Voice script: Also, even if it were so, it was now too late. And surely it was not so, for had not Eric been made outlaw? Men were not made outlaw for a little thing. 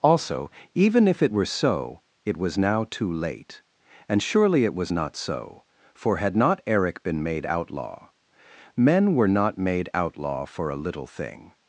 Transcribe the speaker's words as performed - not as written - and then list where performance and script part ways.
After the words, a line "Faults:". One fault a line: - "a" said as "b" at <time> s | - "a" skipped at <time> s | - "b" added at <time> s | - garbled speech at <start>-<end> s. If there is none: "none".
Also, even if it were so, it was now too late. And surely it was not so, for had not Eric been made outlaw? Men were not made outlaw for a little thing.
Faults:
none